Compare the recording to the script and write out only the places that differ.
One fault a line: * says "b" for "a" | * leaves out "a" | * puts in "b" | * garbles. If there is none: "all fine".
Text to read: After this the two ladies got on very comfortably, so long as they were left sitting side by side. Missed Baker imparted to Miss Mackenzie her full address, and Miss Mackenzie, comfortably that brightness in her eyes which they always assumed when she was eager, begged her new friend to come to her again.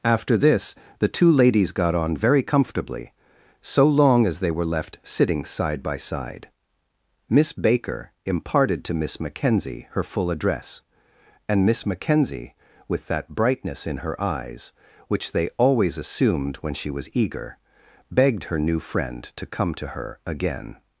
* says "Miss" for "Missed"
* says "with" for "comfortably"